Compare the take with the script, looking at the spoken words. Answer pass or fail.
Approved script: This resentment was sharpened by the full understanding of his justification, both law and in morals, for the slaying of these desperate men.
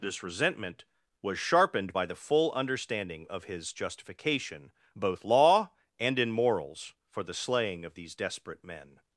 pass